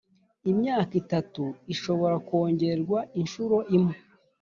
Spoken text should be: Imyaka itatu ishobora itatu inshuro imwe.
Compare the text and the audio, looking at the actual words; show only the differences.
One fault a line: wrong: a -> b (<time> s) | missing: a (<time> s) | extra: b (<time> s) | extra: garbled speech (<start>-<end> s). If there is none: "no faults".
wrong: itatu -> kongerwa (2.3 s)